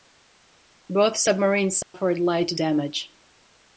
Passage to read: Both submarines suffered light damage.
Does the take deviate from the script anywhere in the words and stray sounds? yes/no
yes